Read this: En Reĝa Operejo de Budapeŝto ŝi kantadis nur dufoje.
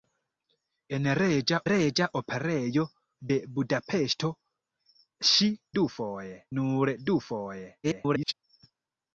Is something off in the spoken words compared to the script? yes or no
yes